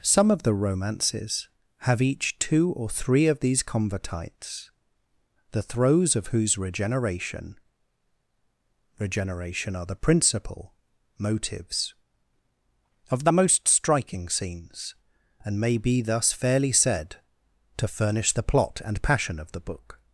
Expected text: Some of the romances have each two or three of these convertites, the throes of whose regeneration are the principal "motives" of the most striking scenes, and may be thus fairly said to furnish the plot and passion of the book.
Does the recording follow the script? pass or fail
fail